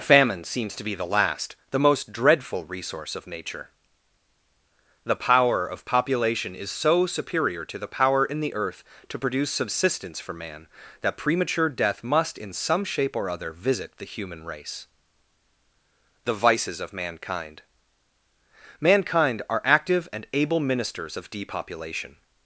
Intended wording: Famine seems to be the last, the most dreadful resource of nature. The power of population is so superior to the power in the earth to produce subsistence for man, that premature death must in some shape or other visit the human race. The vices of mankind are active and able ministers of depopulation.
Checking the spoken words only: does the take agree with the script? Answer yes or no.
no